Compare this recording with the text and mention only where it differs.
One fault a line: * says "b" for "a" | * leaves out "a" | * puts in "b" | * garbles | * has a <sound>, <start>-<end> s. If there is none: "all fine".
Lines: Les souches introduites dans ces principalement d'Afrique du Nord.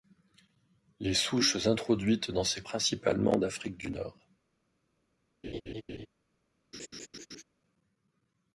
* has a laugh, 5.4-6.1 s
* has a laugh, 6.7-7.4 s